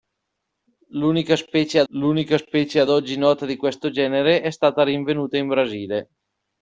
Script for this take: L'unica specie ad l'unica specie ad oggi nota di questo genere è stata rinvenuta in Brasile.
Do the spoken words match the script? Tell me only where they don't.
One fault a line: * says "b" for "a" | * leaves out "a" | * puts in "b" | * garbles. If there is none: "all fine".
all fine